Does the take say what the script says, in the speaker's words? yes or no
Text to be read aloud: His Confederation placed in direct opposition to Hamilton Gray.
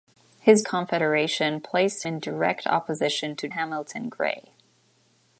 yes